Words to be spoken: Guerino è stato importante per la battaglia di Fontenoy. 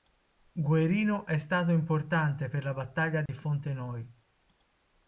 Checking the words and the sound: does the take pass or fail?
fail